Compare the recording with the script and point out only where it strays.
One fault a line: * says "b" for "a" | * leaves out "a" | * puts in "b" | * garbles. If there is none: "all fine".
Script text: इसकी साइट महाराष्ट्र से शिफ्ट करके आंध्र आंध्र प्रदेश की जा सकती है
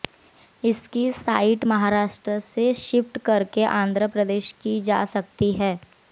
* leaves out "आंध्र"